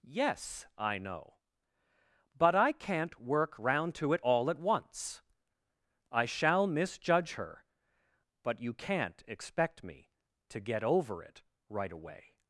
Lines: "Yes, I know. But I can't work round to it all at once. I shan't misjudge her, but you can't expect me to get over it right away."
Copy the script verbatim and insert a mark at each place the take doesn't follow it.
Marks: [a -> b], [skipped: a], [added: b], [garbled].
"Yes, I know. But I can't work round to it all at once. I [shan't -> shall] misjudge her, but you can't expect me to get over it right away."